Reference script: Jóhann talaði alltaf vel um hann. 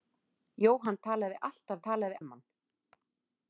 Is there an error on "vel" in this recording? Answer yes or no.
yes